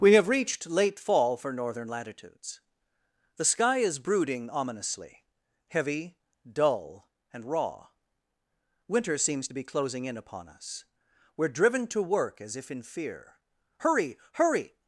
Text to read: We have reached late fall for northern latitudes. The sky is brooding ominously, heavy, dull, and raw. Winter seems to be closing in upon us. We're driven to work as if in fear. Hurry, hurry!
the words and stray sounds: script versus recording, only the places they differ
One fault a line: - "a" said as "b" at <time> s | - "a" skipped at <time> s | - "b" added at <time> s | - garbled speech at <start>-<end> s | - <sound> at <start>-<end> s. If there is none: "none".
none